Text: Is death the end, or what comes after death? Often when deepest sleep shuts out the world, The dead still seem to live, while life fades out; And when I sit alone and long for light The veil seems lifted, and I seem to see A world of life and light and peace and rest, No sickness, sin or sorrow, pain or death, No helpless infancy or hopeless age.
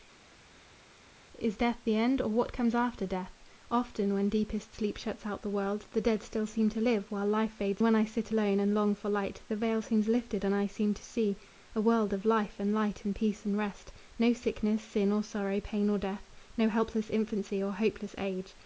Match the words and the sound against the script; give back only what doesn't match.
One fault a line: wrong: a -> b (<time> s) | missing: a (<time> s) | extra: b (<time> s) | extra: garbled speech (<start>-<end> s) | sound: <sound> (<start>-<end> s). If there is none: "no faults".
missing: out And (7.8 s)